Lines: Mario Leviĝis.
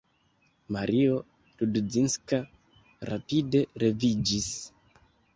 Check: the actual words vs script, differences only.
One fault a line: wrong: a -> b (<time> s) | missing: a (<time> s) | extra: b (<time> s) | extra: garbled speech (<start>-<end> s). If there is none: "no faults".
extra: Rudzinska rapide (1.6 s)